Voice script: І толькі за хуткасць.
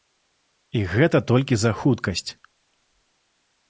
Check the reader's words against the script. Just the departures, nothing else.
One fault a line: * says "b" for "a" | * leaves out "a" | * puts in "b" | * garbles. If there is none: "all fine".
* puts in "гэта"